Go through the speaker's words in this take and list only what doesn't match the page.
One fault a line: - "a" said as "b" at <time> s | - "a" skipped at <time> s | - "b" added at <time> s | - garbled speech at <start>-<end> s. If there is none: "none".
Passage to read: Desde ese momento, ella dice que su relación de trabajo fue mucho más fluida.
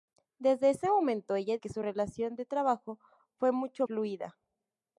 - "dice" skipped at 1.6 s
- "más" skipped at 3.9 s